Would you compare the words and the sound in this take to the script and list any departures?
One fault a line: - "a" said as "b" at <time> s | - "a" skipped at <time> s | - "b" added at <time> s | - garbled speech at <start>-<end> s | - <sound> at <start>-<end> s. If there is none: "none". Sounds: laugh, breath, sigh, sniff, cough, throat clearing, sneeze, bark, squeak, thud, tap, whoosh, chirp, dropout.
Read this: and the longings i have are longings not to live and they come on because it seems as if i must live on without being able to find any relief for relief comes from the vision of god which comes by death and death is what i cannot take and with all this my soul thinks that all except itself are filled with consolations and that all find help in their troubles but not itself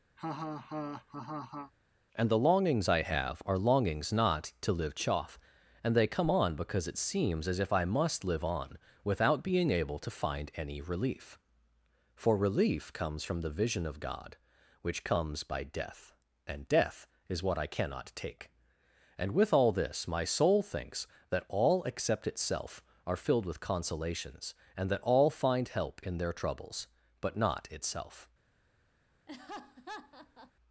- laugh at 0.2-1.7 s
- "chaff" added at 4.9 s
- laugh at 29.3-30.5 s